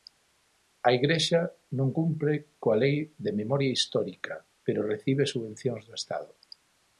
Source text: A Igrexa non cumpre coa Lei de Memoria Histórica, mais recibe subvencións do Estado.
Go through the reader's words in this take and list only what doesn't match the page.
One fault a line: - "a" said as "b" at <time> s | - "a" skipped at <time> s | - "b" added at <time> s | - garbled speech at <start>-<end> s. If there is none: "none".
- "mais" said as "pero" at 4.6 s